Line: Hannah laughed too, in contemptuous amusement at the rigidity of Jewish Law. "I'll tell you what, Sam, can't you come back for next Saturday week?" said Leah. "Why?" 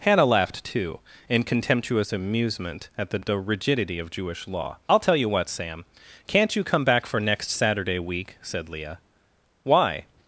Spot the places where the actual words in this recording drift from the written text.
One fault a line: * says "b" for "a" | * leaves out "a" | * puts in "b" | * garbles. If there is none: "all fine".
* puts in "the"